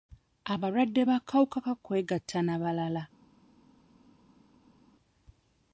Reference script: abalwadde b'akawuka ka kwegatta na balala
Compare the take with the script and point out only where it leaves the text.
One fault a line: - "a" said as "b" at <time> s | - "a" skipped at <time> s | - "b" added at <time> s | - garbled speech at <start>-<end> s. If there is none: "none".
none